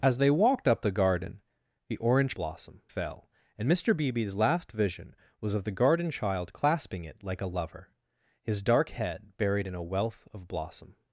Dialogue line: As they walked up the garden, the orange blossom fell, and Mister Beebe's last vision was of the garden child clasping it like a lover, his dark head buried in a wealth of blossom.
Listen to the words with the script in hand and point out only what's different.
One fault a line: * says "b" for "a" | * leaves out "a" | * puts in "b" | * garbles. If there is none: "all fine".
all fine